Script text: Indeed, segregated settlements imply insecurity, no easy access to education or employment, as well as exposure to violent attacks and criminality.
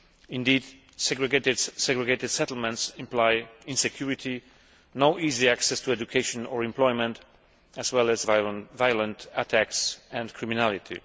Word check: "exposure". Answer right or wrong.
wrong